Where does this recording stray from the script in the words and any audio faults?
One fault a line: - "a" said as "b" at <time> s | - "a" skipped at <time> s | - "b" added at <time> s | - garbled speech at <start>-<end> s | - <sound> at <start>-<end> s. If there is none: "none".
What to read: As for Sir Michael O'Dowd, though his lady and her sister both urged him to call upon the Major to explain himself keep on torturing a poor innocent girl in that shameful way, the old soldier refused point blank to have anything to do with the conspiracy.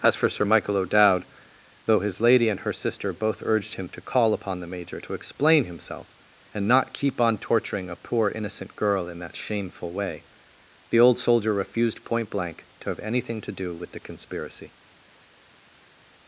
- "and not" added at 6.5 s